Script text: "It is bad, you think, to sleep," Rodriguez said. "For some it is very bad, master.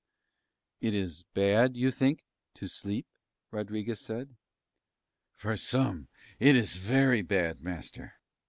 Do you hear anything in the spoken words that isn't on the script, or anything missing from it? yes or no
no